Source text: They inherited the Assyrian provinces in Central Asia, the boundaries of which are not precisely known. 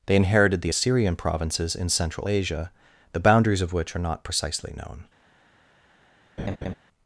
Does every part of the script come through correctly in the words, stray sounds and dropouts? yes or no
no